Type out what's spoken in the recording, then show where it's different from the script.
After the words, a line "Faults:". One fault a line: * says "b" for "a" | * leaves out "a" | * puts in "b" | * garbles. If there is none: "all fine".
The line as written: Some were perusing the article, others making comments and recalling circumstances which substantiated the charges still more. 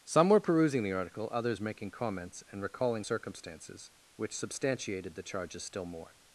Some were perusing the article, others making comments and recalling circumstances which substantiated the charges still more.
Faults:
all fine